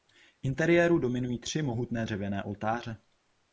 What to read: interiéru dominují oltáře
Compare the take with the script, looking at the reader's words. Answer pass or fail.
fail